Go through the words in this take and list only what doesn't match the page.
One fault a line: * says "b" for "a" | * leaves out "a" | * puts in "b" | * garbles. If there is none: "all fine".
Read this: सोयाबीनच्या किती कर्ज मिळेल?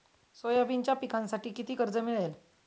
* puts in "पिकांसाठी"